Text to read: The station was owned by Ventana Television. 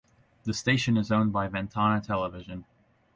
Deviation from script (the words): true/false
true